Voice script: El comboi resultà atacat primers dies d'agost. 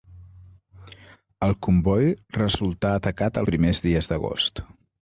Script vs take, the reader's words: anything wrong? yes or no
no